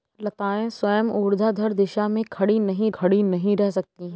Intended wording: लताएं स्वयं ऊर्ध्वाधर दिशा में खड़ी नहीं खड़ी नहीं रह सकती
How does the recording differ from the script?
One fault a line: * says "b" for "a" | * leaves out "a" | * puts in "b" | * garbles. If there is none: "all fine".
all fine